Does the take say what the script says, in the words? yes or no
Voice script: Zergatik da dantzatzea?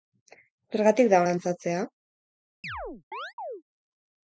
yes